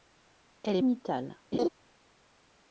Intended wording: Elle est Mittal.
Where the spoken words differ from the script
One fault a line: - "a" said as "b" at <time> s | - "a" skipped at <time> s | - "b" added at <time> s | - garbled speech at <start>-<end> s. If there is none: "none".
none